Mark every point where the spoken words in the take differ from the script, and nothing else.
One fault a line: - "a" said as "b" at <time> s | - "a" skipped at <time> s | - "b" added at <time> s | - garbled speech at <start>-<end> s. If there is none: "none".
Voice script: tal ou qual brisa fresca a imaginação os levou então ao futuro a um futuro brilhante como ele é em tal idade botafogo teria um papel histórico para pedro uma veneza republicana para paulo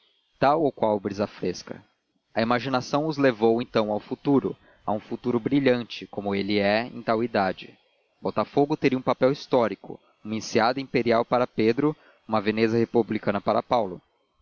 - "uma enseada imperial" added at 10.2 s